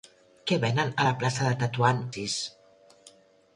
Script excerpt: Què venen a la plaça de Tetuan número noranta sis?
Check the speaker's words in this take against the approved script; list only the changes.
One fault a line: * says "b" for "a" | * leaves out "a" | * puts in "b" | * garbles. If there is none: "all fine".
* leaves out "número noranta"